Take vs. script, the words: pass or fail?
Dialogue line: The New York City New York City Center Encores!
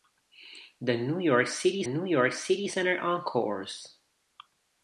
pass